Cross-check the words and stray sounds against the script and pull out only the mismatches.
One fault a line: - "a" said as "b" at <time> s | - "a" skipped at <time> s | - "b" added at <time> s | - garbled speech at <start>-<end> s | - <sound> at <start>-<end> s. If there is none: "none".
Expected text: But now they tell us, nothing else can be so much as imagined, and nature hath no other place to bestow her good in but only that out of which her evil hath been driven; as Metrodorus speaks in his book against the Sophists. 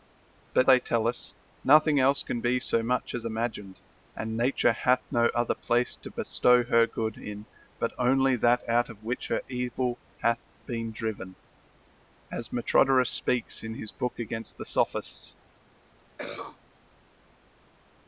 - "now" skipped at 0.7 s
- cough at 16.2-16.6 s